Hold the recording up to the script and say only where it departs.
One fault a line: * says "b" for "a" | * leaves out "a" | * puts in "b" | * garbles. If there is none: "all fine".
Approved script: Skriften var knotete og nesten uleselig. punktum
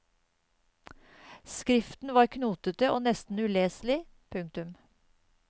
all fine